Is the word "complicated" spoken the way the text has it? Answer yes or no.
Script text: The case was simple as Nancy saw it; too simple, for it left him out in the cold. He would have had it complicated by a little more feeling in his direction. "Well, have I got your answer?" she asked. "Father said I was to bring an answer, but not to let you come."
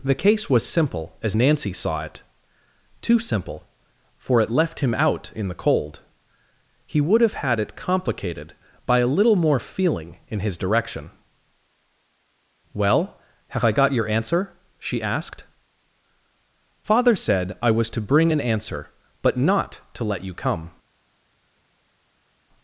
yes